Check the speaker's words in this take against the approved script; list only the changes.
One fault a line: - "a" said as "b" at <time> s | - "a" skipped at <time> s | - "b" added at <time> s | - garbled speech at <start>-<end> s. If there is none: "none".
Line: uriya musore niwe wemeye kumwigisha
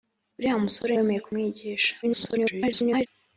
- "niwe" skipped at 0.9 s
- garbled speech at 2.0-3.1 s